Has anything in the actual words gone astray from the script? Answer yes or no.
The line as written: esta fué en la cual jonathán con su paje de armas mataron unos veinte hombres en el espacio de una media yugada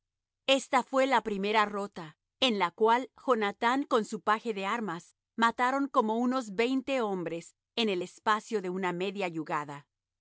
yes